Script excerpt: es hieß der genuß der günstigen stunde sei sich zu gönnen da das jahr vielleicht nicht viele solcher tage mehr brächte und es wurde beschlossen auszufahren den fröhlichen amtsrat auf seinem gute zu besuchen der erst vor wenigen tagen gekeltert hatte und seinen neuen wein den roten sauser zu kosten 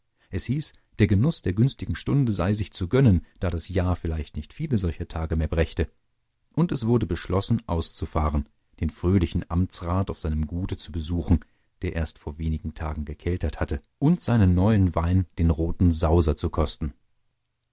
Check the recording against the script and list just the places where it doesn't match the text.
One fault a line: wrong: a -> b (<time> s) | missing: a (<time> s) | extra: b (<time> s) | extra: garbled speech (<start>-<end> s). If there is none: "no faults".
no faults